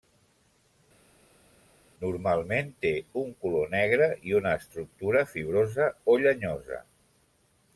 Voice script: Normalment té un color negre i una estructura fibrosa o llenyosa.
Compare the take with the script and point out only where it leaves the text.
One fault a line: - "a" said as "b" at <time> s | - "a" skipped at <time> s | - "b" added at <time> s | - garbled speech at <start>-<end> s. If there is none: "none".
none